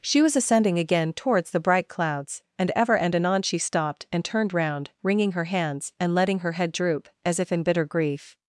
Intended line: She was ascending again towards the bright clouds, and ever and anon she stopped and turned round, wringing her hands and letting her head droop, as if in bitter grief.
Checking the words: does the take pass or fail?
pass